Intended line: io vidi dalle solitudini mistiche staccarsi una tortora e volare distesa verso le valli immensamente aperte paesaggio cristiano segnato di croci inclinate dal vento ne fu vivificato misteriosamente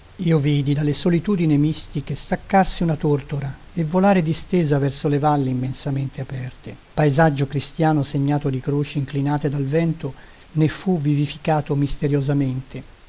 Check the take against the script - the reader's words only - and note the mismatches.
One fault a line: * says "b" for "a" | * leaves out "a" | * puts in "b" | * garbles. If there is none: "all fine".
all fine